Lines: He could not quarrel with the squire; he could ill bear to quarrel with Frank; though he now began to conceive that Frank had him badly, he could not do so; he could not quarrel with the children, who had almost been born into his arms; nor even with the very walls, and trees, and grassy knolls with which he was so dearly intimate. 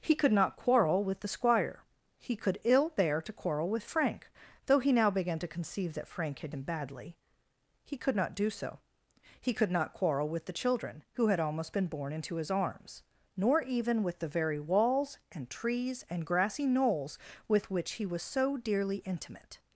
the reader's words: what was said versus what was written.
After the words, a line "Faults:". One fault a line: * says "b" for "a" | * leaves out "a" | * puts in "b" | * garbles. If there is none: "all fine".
He could not quarrel with the squire; he could ill bear to quarrel with Frank; though he now began to conceive that Frank had him badly, he could not do so; he could not quarrel with the children, who had almost been born into his arms; nor even with the very walls, and trees, and grassy knolls with which he was so dearly intimate.
Faults:
all fine